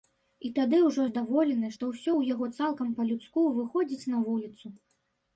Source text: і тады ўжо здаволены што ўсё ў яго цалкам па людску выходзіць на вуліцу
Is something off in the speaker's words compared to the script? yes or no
no